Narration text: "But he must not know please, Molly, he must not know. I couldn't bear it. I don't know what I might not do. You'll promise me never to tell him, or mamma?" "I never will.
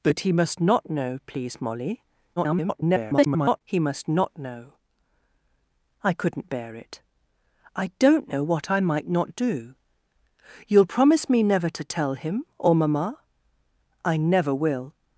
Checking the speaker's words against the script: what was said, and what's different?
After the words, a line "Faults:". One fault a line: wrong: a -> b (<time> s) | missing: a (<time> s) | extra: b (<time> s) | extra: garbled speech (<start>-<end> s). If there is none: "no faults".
"But he must not know please, Molly, [garbled] he must not know. I couldn't bear it. I don't know what I might not do. You'll promise me never to tell him, or mamma?" "I never will.
Faults:
extra: garbled speech (2.4-3.6 s)